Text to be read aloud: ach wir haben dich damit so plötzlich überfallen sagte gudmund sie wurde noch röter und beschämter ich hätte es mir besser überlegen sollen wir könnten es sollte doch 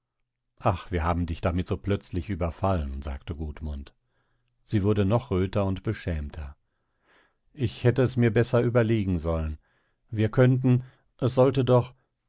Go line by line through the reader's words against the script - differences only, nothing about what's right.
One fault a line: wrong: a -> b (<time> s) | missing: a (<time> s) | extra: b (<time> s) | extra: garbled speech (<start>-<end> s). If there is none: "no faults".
no faults